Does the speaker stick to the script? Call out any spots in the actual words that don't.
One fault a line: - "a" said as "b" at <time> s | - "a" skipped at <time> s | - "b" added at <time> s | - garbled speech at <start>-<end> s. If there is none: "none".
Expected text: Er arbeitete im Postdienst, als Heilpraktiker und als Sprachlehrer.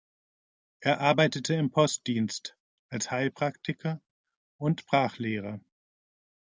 - "als" skipped at 4.8 s